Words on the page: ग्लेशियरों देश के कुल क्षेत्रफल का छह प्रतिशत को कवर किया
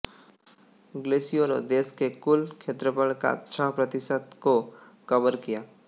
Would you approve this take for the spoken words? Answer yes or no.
yes